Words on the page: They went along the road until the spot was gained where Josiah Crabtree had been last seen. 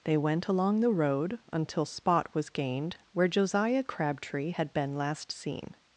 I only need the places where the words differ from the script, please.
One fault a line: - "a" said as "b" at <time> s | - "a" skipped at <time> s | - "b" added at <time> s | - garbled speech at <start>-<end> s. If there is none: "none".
- "the" skipped at 1.8 s